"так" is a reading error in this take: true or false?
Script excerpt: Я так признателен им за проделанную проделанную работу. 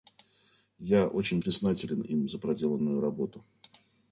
true